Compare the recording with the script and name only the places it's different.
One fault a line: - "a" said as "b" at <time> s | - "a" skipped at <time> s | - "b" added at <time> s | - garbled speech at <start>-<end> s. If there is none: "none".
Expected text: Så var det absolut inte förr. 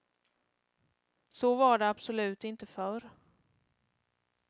none